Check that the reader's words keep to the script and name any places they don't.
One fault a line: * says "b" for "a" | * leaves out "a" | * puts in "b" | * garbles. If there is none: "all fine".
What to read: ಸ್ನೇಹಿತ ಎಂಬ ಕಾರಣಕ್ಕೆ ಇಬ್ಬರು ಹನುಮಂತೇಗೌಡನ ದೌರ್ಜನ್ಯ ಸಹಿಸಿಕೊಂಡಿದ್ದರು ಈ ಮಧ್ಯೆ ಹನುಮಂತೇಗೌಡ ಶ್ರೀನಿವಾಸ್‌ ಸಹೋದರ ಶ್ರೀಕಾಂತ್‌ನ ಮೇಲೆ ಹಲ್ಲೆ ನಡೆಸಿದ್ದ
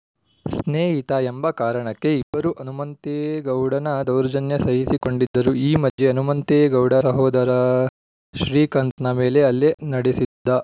* leaves out "ಶ್ರೀನಿವಾಸ್"